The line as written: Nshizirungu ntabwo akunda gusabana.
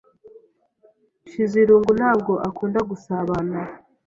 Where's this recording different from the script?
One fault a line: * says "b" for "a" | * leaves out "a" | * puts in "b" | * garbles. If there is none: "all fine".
all fine